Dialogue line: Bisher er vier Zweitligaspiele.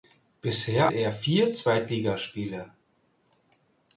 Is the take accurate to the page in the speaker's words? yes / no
yes